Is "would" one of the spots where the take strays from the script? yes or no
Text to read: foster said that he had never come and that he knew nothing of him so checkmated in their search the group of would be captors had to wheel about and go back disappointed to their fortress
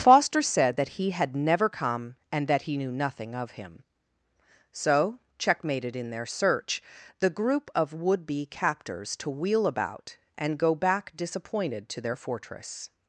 no